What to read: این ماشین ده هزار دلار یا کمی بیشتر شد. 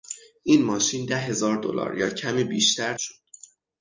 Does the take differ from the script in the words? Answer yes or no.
no